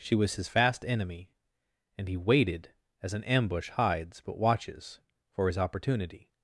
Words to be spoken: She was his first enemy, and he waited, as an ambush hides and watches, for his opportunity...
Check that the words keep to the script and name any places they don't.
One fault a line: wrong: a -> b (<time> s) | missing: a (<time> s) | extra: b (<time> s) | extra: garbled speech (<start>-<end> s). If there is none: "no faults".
wrong: first -> fast (0.5 s)
wrong: and -> but (4.2 s)